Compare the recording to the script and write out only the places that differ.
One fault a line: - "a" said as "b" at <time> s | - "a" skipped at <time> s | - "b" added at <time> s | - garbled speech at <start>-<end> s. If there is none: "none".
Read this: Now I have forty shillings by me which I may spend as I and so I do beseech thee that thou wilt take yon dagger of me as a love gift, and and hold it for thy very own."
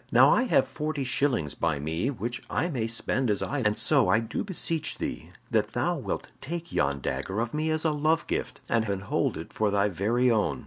none